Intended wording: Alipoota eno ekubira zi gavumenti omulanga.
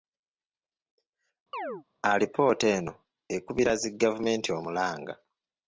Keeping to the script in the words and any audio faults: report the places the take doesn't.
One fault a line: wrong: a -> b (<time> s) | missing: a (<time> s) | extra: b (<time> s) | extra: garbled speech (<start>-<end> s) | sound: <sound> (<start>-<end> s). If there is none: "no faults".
sound: chirp (1.5-1.8 s)